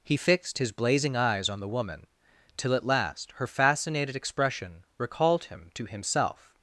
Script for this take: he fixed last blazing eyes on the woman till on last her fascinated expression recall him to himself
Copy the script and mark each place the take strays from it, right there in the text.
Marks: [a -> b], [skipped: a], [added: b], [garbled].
he fixed [last -> his] blazing eyes on the woman till [on -> at] last her fascinated expression [recall -> recalled] him to himself